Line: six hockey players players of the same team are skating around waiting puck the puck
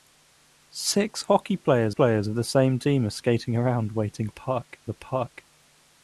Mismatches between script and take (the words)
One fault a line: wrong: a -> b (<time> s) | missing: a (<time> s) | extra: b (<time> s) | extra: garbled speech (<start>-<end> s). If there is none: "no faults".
no faults